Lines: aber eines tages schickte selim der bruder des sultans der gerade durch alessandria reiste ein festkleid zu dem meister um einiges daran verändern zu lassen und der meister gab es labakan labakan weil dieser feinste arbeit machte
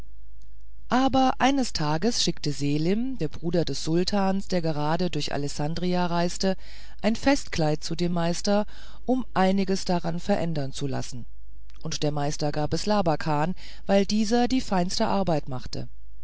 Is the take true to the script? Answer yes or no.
no